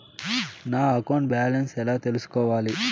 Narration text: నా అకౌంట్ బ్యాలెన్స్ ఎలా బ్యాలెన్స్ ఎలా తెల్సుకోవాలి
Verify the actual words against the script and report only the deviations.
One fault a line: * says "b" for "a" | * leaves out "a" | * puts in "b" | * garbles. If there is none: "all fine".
* leaves out "బ్యాలెన్స్ ఎలా"